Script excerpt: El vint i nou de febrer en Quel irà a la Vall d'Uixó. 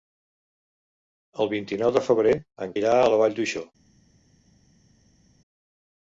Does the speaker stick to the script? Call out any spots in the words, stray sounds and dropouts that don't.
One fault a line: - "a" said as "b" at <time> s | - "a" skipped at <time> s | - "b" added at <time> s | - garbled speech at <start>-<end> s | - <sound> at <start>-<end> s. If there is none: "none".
- "Quel" skipped at 2.8 s